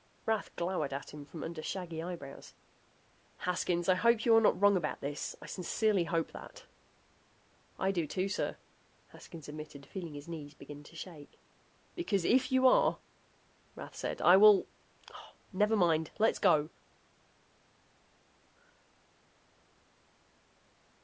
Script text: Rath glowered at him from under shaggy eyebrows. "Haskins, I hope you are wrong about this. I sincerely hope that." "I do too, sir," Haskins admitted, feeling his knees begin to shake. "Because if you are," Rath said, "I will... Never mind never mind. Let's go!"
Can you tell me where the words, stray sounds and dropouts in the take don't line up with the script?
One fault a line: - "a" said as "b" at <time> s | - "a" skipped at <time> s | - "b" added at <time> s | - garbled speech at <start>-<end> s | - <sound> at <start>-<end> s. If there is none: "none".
- "not" added at 4.4 s
- "never mind" skipped at 16.1 s